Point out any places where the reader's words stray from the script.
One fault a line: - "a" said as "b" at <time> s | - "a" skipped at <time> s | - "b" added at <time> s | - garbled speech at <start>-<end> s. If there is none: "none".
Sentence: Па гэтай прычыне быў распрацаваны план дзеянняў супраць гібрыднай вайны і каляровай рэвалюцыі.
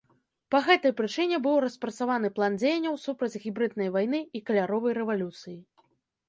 none